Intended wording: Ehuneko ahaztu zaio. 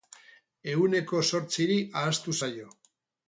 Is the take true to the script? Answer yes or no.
no